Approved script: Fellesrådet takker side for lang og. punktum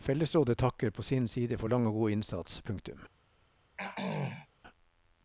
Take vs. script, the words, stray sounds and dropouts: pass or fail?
fail